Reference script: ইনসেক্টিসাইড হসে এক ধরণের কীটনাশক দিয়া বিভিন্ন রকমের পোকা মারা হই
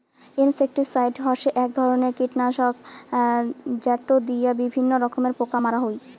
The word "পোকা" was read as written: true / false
true